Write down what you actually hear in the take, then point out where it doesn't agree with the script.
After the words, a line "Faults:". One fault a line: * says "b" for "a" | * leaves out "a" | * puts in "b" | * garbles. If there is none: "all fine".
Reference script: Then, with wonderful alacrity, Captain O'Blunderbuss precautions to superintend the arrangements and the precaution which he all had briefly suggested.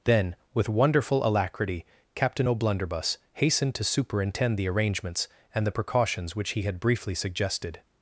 Then, with wonderful alacrity, Captain O'Blunderbuss hastened to superintend the arrangements and the precautions which he had briefly suggested.
Faults:
* says "hastened" for "precautions"
* says "precautions" for "precaution"
* leaves out "all"